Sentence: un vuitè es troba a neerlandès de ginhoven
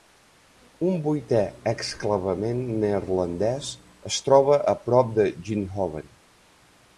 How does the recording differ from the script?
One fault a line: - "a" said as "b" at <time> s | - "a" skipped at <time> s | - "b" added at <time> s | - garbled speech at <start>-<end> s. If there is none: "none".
- "exclavament neerlandès" added at 1.7 s
- "neerlandès" said as "prop" at 4.9 s